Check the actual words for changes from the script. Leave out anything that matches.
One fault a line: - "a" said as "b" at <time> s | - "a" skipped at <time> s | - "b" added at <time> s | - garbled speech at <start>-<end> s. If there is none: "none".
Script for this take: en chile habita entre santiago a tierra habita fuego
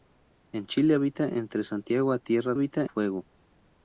none